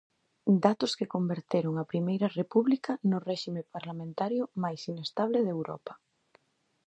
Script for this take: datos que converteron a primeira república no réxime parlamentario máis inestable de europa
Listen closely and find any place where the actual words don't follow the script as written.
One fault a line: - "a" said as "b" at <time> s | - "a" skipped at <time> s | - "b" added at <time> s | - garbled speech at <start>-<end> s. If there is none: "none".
none